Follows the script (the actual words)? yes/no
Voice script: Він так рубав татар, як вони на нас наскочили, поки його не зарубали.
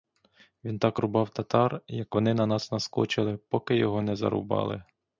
yes